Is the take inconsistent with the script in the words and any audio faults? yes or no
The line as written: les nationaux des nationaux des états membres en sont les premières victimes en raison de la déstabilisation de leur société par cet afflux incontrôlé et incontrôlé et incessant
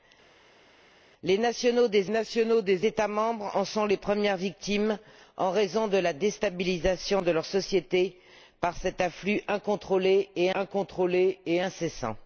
no